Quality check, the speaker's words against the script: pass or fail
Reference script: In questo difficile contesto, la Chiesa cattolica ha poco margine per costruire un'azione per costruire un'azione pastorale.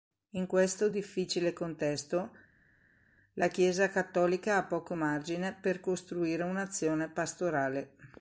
fail